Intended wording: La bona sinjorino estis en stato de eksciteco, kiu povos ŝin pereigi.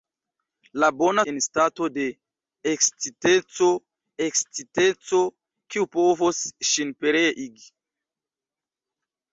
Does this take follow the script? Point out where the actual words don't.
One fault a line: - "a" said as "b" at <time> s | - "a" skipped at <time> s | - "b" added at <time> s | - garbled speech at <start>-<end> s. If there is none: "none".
- "sinjorino estis" skipped at 1.2 s
- "eksciteco" added at 4.3 s